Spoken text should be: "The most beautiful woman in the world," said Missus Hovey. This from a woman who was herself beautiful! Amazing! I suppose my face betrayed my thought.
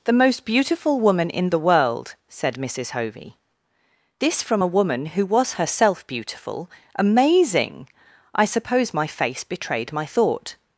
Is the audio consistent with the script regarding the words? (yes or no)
yes